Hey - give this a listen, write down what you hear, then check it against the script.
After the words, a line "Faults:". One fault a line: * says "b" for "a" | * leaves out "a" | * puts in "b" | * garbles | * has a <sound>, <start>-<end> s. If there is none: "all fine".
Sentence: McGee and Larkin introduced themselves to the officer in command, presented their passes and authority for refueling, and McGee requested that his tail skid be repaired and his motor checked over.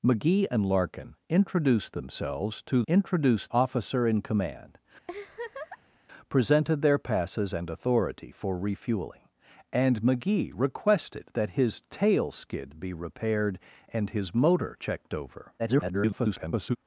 McGee and Larkin introduced themselves to introduced officer in command, presented their passes and authority for refueling, and McGee requested that his tail skid be repaired and his motor checked over. [garbled]
Faults:
* says "introduced" for "the"
* has a laugh, 5.1-6.0 s
* garbles